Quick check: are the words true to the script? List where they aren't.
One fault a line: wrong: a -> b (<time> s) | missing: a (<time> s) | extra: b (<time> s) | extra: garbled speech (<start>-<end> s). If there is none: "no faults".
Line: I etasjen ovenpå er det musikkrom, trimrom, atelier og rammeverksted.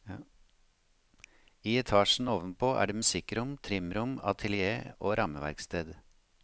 no faults